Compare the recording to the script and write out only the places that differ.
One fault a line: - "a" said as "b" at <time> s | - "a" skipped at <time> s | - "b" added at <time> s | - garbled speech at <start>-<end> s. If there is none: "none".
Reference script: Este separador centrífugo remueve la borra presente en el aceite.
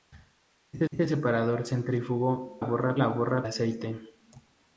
- "este" added at 0.9 s
- "remueve" said as "borra" at 2.6 s
- "presente en el" skipped at 3.5 s